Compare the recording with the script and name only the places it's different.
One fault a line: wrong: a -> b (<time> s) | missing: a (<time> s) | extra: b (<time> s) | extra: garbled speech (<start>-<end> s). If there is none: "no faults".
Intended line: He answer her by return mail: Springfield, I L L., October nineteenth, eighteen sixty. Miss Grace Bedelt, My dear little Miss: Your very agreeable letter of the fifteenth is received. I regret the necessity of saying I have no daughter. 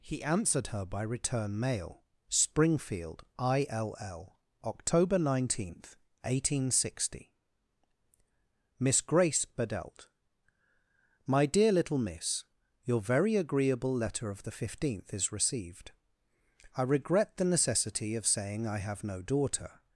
wrong: answer -> answered (0.2 s)